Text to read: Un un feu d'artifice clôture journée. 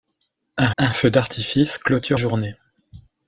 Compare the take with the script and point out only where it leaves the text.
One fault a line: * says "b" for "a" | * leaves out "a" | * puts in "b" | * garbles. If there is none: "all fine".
all fine